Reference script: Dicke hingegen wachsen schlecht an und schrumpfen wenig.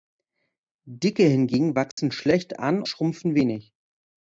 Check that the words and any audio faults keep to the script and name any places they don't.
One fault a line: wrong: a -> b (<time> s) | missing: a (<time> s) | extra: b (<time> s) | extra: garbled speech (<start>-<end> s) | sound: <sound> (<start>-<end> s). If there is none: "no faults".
sound: dropout (1.9-2.0 s)
missing: und (2.8 s)